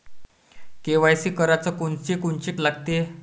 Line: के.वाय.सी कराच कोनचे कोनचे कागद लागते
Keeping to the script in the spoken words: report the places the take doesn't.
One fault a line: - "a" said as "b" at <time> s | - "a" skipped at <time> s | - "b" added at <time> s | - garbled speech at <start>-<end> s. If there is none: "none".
- "कागद" skipped at 2.5 s